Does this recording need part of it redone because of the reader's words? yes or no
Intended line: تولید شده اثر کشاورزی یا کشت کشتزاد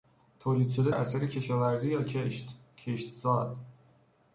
no